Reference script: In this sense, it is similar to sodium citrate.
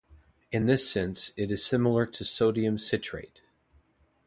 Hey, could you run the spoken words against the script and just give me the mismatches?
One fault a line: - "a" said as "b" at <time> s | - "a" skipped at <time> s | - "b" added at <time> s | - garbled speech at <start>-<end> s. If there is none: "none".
none